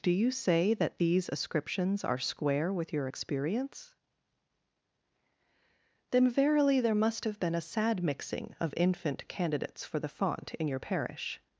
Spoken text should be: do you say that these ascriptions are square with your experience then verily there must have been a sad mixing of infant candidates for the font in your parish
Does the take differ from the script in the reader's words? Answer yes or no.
no